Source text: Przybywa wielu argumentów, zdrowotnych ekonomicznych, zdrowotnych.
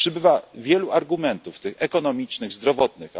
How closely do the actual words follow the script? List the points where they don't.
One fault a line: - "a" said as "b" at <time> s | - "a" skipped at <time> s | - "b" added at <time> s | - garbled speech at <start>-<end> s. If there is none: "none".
- "zdrowotnych" said as "tych" at 1.6 s